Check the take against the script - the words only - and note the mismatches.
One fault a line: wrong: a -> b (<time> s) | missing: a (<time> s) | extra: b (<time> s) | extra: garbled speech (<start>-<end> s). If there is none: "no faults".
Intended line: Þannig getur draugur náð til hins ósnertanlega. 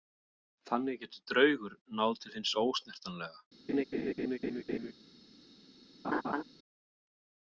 no faults